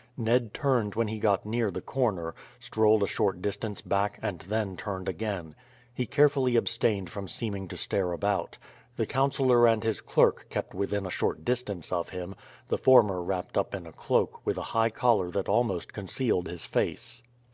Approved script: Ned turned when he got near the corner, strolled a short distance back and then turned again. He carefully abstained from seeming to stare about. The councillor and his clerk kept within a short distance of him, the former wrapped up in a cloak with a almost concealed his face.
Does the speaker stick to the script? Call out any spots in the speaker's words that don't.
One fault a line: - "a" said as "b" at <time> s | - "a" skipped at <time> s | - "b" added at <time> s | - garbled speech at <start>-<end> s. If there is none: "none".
- "high collar that" added at 14.7 s